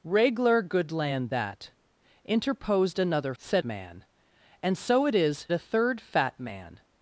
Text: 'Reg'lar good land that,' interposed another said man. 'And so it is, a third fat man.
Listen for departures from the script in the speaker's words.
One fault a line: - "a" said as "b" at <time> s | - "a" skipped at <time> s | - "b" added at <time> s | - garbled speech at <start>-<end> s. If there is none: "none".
none